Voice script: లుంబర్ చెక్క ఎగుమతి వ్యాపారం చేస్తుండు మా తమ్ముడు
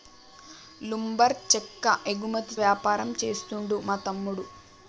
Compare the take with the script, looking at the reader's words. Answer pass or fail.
pass